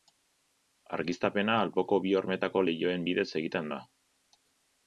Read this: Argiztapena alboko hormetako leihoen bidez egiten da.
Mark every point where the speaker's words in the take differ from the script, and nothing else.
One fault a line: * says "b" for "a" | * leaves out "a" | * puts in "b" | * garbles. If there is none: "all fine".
* puts in "bi"